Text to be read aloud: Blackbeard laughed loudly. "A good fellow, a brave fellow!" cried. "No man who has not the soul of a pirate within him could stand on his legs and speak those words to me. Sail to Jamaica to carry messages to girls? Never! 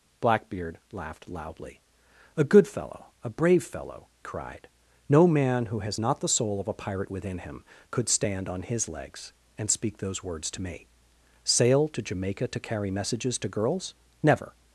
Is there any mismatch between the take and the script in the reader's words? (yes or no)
no